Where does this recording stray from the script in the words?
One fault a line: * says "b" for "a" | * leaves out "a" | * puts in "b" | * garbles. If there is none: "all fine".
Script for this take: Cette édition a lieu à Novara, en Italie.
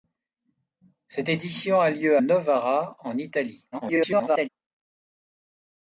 * leaves out "à"
* garbles